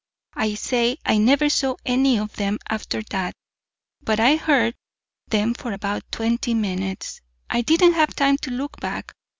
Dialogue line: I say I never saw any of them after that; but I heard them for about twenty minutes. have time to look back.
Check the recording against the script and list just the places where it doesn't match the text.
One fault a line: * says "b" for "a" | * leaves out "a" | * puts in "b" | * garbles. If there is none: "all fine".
* puts in "I didn't"